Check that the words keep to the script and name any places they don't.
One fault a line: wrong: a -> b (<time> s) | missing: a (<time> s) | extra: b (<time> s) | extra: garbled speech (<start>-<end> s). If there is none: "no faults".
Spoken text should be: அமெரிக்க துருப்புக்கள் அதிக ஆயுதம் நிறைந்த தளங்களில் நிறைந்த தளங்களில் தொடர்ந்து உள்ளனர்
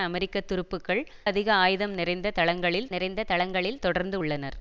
no faults